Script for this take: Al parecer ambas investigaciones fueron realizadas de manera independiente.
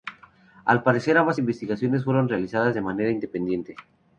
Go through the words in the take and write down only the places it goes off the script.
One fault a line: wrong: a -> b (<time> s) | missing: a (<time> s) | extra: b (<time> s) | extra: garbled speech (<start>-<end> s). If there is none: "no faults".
no faults